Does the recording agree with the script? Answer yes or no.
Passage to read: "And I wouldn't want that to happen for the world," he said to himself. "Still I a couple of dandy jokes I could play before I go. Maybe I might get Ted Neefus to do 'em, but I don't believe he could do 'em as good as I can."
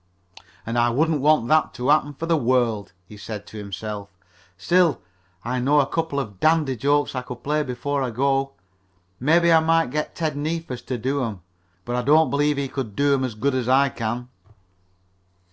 no